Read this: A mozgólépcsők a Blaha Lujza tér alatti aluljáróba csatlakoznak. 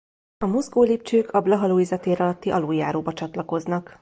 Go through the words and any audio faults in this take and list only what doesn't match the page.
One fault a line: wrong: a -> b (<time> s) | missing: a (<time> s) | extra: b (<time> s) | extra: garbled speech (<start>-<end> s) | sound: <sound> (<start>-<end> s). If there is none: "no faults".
no faults